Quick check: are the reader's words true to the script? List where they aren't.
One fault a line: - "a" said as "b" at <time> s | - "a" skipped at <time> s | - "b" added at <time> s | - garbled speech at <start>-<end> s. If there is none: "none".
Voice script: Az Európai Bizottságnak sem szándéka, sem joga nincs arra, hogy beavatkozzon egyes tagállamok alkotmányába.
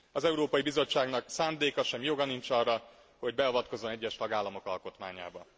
- "sem" skipped at 1.2 s